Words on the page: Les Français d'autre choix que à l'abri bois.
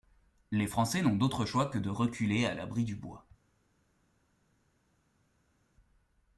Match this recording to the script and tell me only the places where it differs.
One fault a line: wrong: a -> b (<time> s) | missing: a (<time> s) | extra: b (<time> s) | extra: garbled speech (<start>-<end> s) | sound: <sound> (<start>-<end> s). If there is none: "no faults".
extra: n'ont (1.0 s)
extra: de reculer (1.8 s)
extra: du (2.9 s)